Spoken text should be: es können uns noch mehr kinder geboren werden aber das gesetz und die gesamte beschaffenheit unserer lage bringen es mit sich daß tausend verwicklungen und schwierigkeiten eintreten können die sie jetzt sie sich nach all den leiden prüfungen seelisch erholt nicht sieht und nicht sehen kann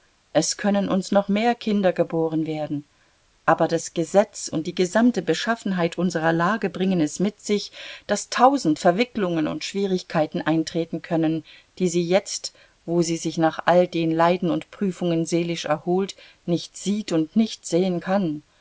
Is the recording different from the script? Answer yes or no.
yes